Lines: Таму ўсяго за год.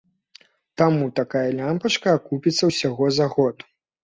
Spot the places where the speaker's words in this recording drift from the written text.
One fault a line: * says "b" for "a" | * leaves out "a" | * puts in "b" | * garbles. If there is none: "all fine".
* puts in "такая лямпачка акупіцца"